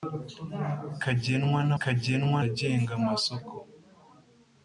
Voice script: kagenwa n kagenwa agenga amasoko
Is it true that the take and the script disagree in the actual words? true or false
false